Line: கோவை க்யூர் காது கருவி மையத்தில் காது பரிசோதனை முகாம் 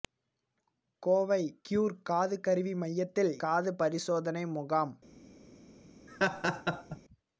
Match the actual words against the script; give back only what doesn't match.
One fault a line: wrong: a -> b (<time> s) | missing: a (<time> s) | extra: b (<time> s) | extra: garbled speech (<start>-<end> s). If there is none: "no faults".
no faults